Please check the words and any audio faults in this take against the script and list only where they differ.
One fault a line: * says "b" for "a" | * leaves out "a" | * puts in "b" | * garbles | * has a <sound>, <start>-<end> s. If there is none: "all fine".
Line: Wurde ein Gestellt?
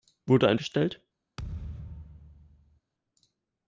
* has a thud, 1.4-2.8 s